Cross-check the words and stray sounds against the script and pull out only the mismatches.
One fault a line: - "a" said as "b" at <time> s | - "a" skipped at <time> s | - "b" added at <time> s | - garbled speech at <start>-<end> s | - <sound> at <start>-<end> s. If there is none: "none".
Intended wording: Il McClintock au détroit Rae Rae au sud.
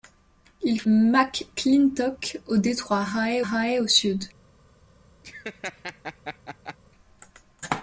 - laugh at 5.2-6.8 s